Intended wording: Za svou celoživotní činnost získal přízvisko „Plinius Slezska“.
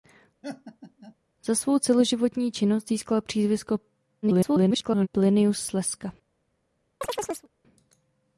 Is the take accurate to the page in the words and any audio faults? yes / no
no